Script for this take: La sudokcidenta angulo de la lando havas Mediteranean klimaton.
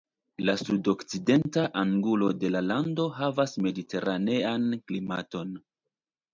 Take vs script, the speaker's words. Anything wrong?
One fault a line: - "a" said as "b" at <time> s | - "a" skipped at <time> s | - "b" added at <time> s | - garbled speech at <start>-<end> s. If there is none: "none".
none